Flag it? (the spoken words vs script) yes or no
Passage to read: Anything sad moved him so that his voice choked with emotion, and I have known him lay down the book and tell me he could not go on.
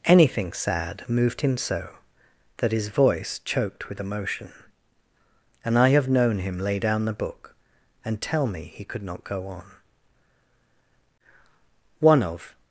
yes